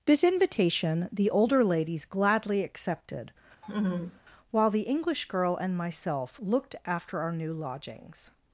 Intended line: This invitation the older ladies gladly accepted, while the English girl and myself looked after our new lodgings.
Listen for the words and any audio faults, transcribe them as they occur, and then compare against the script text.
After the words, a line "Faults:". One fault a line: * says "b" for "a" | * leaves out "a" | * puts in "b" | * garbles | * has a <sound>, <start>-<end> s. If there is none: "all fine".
This invitation the older ladies gladly accepted, while the English girl and myself looked after our new lodgings.
Faults:
* has a laugh, 3.6-4.2 s